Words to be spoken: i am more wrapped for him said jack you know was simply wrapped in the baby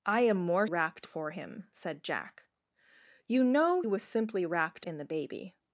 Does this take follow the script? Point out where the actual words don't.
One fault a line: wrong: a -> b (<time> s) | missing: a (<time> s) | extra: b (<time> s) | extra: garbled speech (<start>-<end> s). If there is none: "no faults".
no faults